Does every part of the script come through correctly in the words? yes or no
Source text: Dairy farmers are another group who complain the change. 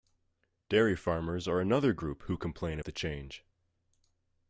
yes